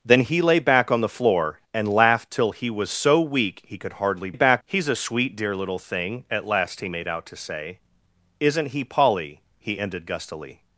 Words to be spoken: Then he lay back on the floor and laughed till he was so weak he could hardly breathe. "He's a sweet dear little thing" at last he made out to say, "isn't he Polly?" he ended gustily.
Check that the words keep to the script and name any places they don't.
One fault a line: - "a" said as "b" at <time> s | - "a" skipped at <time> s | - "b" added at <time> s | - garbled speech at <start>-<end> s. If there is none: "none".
- "breathe" said as "back" at 4.3 s